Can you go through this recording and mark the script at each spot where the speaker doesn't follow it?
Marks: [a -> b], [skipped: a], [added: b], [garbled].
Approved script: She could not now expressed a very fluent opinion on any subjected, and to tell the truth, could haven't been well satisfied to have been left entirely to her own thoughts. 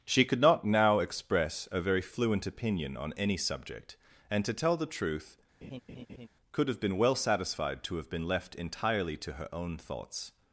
She could not now [expressed -> express] a very fluent opinion on any [subjected, -> subject] and to tell the truth, could [haven't -> have] been well satisfied to have been left entirely to her own thoughts.